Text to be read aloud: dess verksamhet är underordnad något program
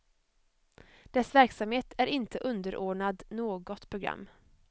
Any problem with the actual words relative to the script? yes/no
yes